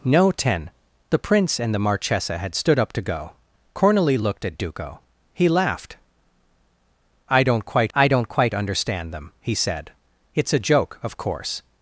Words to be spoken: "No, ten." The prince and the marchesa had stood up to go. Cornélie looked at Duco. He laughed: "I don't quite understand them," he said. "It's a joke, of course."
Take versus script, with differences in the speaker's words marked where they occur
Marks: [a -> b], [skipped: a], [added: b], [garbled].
"No, ten." The prince and the marchesa had stood up to go. Cornélie looked at Duco. He laughed: "I don't quite [added: I don't quite] understand them," he said. "It's a joke, of course."